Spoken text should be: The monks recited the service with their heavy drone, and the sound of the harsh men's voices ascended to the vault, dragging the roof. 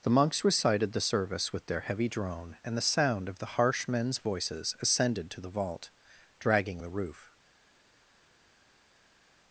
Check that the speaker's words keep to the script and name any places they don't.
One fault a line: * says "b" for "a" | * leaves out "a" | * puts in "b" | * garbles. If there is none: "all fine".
all fine